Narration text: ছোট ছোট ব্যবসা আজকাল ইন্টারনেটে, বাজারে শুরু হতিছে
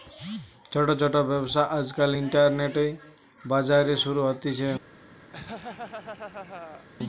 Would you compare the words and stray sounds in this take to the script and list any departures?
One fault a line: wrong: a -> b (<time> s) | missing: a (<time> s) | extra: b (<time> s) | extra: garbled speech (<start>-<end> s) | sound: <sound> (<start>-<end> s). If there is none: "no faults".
sound: laugh (5.3-6.9 s)